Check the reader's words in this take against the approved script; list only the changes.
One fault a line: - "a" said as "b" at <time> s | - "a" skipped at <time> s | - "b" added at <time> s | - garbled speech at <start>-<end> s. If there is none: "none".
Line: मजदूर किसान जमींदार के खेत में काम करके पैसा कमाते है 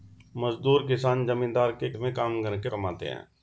- "खेत" skipped at 1.9 s
- "पैसा" skipped at 2.7 s